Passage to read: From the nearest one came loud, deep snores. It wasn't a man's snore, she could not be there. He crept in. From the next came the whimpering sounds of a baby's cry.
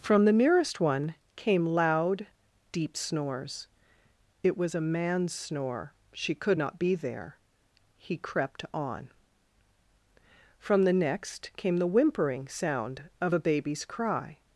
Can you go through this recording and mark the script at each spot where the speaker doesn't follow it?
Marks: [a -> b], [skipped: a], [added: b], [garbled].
From the nearest one came loud, deep snores. It [wasn't -> was] a man's snore, she could not be there. He crept [in. -> on] From the next came the whimpering [sounds -> sound] of a baby's cry.